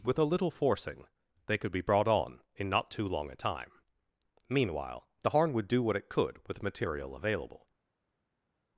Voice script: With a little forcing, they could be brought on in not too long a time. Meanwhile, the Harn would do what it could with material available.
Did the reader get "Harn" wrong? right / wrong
right